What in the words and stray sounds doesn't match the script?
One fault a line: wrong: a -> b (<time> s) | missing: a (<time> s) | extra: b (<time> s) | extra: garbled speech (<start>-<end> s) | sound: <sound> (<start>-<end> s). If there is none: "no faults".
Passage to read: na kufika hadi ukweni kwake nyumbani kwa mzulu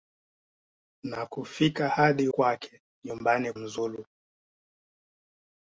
missing: ukweni (2.3 s)
missing: kwa (3.5 s)